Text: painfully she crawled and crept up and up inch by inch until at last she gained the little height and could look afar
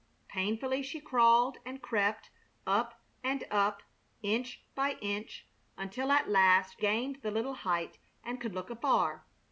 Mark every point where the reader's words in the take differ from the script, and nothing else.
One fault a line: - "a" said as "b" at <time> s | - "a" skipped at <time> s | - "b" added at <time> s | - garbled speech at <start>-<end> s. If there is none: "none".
- "she" skipped at 6.8 s